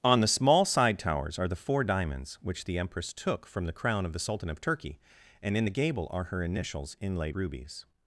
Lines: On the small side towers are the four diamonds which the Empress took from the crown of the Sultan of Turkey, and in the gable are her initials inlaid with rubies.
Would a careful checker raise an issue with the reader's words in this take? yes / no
yes